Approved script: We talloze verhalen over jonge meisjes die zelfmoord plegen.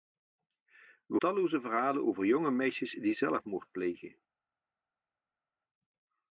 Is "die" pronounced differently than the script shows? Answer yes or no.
no